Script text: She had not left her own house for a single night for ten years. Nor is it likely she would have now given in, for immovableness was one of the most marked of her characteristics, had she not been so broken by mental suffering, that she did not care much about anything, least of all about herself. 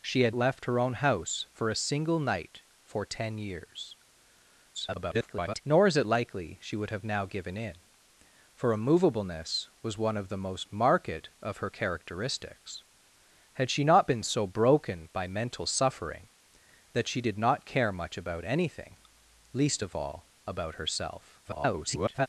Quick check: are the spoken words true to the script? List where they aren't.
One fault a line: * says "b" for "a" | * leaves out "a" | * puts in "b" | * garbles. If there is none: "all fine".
* leaves out "not"
* garbles
* garbles